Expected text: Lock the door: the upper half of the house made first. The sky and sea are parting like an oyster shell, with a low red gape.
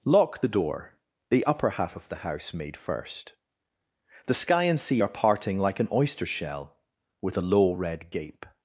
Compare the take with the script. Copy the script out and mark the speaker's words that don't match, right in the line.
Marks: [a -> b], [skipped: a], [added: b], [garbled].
Lock the door: the upper half of the house made first. The sky and sea are parting like an oyster shell, with a low red gape.